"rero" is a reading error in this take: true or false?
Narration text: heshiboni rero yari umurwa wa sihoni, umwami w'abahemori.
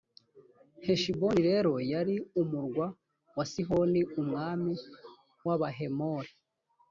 false